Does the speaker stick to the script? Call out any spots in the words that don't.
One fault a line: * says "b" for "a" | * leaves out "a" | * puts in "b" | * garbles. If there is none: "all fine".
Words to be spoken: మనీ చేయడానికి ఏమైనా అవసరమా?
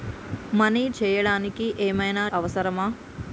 all fine